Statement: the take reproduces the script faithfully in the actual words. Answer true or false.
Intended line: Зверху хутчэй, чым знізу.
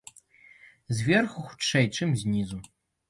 true